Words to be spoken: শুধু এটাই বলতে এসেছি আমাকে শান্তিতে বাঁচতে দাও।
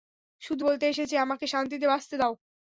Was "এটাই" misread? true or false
true